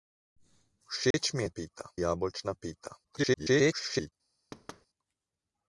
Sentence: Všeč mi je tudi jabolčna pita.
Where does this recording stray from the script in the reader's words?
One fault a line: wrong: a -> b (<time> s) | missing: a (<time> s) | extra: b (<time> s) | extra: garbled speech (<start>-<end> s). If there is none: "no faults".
wrong: tudi -> pita (1.5 s)
extra: garbled speech (3.0-4.1 s)